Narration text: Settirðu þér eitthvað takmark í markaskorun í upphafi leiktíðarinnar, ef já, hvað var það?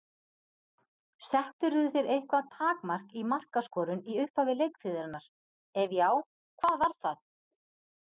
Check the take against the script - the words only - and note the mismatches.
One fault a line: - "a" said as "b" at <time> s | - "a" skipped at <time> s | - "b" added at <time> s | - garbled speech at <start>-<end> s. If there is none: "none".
none